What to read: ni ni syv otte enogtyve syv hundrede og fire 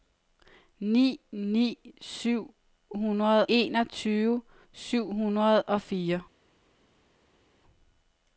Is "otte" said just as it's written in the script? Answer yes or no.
no